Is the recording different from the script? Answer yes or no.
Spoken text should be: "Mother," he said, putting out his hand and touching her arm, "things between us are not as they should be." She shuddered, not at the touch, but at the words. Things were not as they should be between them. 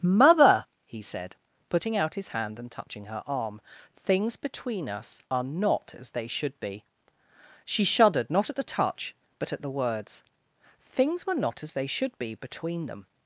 no